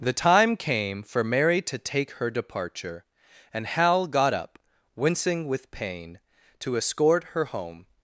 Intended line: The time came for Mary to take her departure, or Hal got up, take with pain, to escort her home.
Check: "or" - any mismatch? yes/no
yes